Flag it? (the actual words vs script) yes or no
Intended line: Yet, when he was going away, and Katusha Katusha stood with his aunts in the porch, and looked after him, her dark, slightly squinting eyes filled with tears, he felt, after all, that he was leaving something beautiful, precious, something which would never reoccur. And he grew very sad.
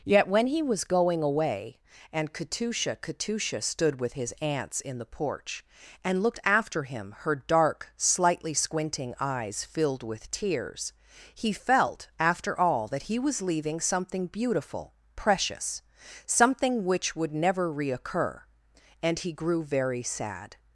no